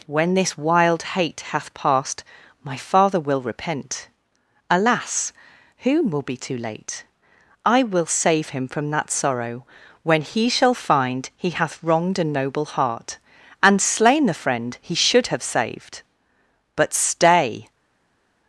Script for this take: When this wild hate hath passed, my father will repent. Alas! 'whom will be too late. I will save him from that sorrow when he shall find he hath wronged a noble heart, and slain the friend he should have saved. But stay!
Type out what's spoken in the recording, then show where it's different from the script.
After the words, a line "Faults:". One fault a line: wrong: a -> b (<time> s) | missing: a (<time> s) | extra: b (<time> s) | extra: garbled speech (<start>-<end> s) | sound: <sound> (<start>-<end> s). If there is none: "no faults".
When this wild hate hath passed, my father will repent. Alas! 'whom will be too late. I will save him from that sorrow when he shall find he hath wronged a noble heart, and slain the friend he should have saved. But stay!
Faults:
no faults